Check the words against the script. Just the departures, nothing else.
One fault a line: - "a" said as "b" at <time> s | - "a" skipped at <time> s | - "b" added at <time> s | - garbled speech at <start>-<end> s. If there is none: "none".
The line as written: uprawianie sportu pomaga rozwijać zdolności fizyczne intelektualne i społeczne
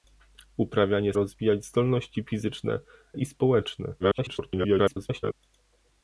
- "sportu pomaga" skipped at 1.1 s
- "intelektualne" skipped at 2.8 s
- garbled speech at 4.0-5.3 s